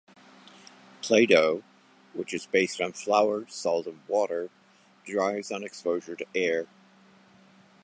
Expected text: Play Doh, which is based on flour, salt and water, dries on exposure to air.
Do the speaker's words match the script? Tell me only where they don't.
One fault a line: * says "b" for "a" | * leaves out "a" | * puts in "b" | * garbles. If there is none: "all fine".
all fine